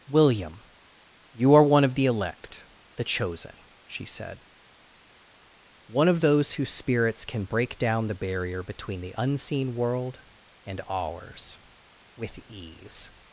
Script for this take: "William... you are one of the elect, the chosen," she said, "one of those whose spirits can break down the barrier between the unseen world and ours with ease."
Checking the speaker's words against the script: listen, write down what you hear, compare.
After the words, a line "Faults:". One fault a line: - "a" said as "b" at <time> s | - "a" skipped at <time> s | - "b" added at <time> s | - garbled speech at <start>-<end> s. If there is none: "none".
"William... you are one of the elect, the chosen," she said, "one of those whose spirits can break down the barrier between the unseen world and ours with ease."
Faults:
none